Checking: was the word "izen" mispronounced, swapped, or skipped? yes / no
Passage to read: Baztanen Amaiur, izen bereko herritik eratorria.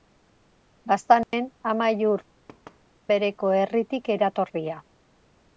yes